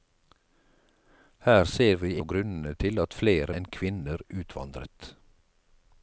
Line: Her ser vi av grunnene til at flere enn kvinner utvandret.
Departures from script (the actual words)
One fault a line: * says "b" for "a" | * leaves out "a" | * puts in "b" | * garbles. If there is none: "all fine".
all fine